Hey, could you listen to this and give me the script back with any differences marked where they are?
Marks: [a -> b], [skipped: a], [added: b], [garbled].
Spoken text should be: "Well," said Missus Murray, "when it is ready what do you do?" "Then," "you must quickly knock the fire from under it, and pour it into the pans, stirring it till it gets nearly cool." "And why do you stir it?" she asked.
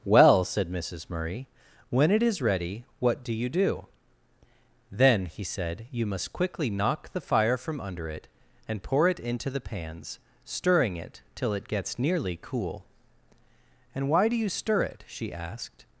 "Well," said Missus Murray, "when it is ready what do you do?" "Then," [added: he said] "you must quickly knock the fire from under it, and pour it into the pans, stirring it till it gets nearly cool." "And why do you stir it?" she asked.